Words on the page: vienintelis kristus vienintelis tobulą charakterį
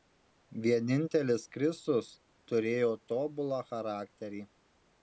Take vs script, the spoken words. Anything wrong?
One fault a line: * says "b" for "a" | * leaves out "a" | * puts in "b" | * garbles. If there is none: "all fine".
* says "turėjo" for "vienintelis"